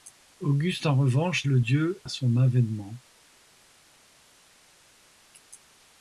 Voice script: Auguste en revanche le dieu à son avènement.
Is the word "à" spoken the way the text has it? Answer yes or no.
yes